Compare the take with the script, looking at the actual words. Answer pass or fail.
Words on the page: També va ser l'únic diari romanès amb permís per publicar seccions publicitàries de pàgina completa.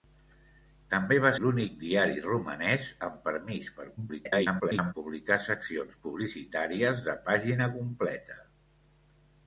fail